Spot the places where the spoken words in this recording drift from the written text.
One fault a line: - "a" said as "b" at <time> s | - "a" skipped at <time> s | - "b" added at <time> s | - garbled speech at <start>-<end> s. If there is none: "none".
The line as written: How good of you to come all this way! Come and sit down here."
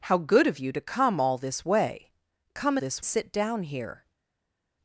- "and" said as "this" at 2.8 s